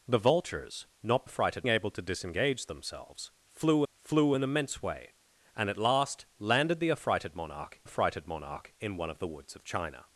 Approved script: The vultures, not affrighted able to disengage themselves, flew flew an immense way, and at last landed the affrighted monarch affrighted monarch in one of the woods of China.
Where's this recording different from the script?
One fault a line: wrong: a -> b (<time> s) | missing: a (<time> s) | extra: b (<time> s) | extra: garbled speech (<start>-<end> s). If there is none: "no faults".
no faults